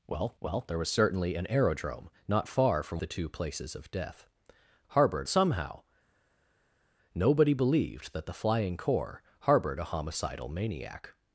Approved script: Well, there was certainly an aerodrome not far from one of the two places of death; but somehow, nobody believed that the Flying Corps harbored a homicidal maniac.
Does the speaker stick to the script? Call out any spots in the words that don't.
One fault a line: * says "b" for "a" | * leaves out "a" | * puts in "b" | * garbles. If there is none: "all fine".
* puts in "well"
* leaves out "one of"
* says "harbored" for "but"